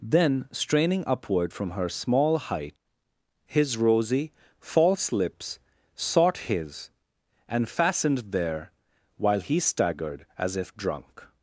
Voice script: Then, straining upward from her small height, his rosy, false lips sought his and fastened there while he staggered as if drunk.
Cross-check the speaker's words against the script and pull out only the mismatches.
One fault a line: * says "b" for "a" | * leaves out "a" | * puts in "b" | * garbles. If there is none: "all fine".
all fine